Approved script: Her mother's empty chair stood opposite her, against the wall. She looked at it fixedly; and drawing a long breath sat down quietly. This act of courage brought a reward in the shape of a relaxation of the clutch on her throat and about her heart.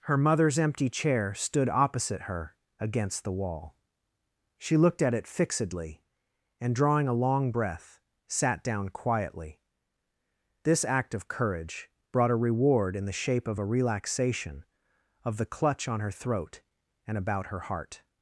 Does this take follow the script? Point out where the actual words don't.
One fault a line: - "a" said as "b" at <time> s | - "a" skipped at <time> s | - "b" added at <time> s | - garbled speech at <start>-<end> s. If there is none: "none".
none